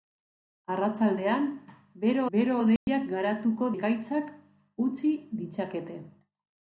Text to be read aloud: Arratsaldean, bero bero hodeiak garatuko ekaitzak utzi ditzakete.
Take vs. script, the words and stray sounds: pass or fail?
fail